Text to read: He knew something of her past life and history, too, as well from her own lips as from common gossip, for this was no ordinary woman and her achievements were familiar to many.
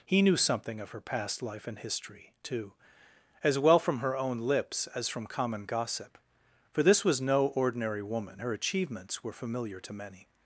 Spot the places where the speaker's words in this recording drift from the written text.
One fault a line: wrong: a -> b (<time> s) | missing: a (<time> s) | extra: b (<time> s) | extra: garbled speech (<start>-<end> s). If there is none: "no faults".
missing: and (8.4 s)